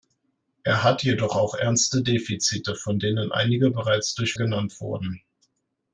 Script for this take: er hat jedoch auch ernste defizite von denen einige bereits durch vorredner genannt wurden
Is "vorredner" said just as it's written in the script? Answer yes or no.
no